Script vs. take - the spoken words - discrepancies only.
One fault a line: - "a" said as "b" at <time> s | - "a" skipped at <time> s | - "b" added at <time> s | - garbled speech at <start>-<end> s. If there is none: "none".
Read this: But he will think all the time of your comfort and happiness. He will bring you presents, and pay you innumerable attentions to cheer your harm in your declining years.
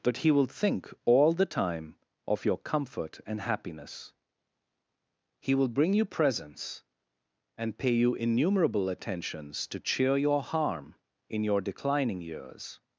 none